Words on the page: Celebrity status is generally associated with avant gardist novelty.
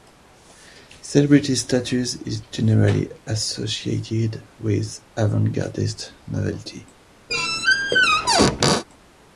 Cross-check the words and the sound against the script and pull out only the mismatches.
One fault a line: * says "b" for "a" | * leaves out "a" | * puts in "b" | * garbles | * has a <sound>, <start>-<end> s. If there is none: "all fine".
* has a squeak, 7.3-8.8 s